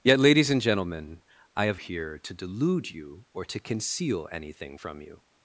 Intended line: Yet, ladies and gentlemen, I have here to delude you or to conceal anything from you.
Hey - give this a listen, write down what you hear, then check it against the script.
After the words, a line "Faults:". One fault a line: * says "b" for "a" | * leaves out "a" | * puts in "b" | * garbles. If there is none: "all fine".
Yet, ladies and gentlemen, I have here to delude you or to conceal anything from you.
Faults:
all fine